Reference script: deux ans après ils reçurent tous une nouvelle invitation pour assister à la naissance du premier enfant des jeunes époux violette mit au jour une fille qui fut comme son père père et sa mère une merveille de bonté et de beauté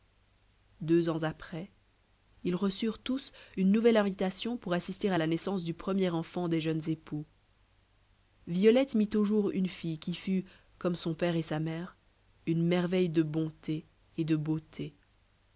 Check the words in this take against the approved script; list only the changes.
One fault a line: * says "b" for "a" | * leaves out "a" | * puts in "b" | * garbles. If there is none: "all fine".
* leaves out "père"